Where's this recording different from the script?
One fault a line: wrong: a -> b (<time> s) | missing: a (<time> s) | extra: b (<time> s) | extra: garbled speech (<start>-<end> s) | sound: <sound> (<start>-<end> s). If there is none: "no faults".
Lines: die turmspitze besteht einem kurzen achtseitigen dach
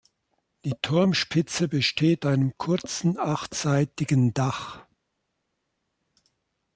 no faults